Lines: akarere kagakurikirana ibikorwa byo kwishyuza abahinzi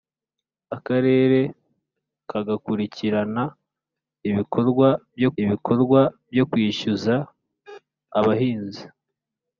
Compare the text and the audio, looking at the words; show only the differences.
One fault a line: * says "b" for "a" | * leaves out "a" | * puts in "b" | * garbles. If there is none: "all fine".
* puts in "ibikorwa byo"